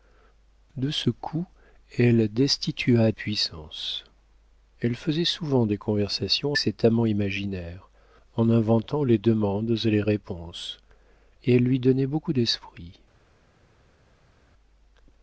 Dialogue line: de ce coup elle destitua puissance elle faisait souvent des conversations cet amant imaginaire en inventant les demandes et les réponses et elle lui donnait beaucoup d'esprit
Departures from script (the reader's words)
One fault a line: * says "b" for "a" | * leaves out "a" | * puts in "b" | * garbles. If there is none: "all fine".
all fine